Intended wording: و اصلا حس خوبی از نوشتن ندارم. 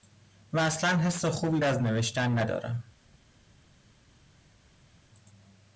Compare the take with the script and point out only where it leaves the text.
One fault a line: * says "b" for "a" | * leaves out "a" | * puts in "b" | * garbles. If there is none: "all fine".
all fine